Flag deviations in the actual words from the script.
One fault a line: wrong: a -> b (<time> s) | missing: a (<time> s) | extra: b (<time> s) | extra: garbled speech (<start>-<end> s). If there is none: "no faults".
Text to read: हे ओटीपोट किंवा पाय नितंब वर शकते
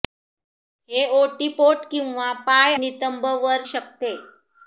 no faults